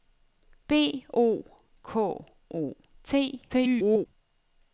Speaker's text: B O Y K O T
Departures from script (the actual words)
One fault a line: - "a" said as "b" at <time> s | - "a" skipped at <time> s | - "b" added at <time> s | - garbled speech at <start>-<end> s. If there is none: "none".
- "Y" skipped at 1.4 s
- garbled speech at 3.5-4.1 s